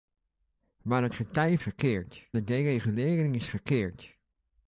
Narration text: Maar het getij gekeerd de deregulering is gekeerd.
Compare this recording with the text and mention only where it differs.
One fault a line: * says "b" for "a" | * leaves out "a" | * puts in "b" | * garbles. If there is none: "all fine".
all fine